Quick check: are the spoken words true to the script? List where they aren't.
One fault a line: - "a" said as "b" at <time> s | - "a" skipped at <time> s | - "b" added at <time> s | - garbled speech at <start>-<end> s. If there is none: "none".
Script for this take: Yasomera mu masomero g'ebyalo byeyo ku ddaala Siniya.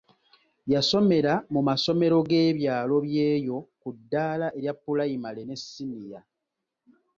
- "erya Pulayimale ne" added at 4.6 s